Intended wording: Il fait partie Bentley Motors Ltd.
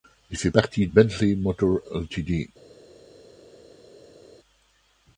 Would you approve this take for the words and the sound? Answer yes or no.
yes